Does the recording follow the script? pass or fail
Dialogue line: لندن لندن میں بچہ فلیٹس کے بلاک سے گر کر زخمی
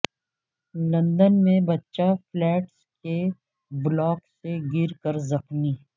fail